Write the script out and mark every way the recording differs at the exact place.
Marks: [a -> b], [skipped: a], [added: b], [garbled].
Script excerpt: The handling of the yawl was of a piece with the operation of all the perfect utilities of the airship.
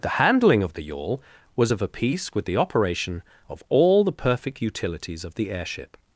The handling of the yawl was of a piece with the operation of all the perfect utilities of the airship.